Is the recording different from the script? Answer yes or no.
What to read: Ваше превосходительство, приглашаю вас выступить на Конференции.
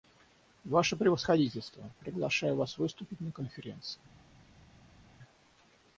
no